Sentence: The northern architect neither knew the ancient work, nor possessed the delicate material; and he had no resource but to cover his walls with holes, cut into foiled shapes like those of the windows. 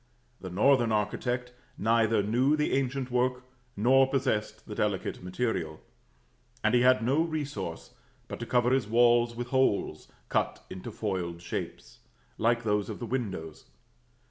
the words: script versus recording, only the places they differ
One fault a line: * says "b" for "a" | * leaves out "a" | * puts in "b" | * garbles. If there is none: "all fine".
all fine